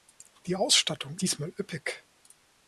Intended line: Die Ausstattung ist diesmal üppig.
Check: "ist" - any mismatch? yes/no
yes